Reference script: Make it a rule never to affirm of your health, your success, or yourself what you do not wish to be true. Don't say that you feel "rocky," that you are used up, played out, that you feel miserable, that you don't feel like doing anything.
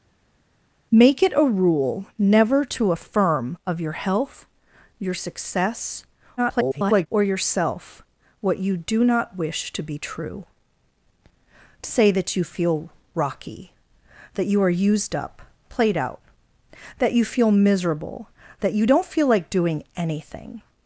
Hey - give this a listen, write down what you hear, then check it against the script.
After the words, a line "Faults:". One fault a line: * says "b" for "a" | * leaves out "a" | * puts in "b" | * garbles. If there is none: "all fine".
Make it a rule never to affirm of your health, your success, [garbled] or yourself what you do not wish to be true. Say that you feel "rocky," that you are used up, played out, that you feel miserable, that you don't feel like doing anything.
Faults:
* garbles
* leaves out "Don't"